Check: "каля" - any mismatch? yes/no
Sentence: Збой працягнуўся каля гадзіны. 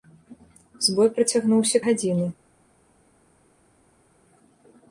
yes